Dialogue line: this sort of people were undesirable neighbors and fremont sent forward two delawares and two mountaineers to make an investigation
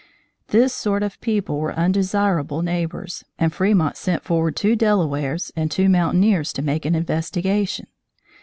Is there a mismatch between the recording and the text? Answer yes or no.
no